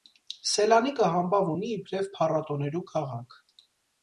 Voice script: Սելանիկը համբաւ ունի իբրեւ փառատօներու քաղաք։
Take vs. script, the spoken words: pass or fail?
pass